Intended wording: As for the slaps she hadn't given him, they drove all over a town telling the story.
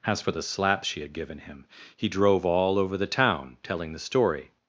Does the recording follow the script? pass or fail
fail